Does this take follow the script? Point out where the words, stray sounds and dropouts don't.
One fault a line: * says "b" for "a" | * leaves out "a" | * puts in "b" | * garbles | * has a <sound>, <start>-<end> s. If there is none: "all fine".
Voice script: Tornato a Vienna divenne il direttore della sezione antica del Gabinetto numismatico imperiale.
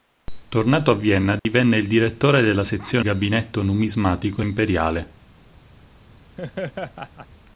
* has a dropout, 1.4-1.5 s
* leaves out "antica del"
* has a laugh, 6.4-7.3 s